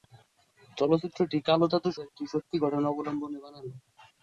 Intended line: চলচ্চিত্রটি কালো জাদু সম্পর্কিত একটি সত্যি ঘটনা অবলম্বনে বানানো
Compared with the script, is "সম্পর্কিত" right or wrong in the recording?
wrong